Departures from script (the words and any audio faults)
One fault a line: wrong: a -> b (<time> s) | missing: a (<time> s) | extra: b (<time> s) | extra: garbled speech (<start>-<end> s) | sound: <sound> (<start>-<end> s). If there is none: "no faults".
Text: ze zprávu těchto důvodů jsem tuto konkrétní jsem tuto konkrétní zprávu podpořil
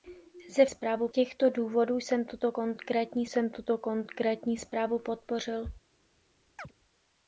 sound: chirp (6.6-6.7 s)